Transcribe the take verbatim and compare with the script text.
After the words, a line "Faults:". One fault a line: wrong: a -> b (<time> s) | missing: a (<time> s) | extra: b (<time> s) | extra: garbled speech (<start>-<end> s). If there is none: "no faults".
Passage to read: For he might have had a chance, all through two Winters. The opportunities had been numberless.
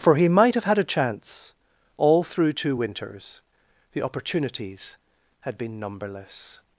For he might have had a chance, all through two Winters. The opportunities had been numberless.
Faults:
no faults